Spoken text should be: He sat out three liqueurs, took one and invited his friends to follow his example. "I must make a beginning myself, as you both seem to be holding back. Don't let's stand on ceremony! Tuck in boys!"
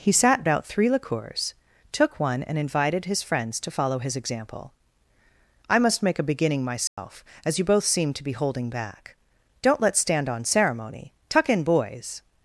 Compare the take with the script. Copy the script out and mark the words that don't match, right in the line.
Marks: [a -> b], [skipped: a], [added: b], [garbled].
He sat out three liqueurs, took one and invited his friends to follow his example. "I must make a beginning myself, as you both seem to be holding back. Don't let's stand on ceremony! Tuck in boys!"